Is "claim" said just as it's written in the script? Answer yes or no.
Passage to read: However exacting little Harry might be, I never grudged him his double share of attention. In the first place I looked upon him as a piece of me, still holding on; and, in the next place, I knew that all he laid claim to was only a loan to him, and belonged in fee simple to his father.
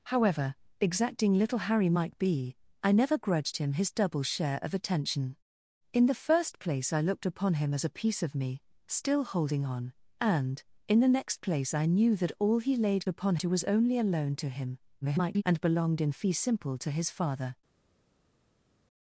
no